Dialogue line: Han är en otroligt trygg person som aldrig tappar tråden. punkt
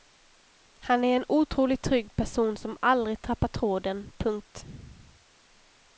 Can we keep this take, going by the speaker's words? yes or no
yes